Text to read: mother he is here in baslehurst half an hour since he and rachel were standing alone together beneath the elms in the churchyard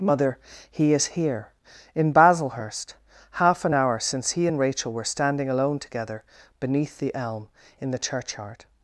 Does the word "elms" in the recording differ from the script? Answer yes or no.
yes